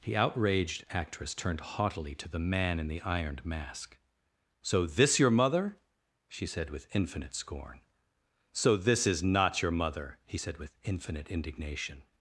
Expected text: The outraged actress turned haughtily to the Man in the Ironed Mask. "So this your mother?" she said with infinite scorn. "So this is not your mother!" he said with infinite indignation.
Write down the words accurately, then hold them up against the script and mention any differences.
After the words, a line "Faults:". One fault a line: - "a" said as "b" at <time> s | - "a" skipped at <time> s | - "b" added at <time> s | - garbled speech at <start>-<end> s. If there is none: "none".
The outraged actress turned haughtily to the Man in the Ironed Mask. "So this your mother?" she said with infinite scorn. "So this is not your mother!" he said with infinite indignation.
Faults:
none